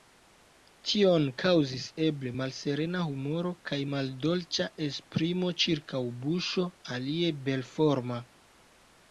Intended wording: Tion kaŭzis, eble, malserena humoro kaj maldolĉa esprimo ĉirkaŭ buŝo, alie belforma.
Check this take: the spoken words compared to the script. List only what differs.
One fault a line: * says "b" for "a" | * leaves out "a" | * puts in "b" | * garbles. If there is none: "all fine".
all fine